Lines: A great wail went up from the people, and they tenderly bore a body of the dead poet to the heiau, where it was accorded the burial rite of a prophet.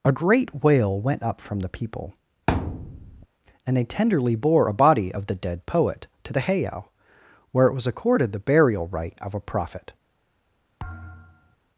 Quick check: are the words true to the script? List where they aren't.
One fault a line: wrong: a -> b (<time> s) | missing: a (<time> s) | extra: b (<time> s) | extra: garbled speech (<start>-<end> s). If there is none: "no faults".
no faults